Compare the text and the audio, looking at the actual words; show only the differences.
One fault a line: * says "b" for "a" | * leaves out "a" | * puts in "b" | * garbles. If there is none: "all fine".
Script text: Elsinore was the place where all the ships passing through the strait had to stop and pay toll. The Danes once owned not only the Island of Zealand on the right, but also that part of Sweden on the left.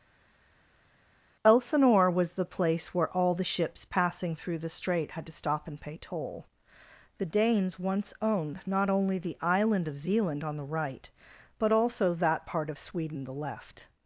* leaves out "on"